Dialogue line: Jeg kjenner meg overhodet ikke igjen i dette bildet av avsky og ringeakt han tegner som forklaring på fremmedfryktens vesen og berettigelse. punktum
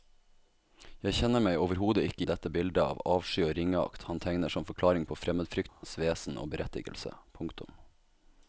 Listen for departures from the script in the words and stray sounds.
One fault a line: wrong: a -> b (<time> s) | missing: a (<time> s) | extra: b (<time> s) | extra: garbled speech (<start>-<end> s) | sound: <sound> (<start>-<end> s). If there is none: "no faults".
missing: igjen (2.2 s)
sound: dropout (5.7-5.8 s)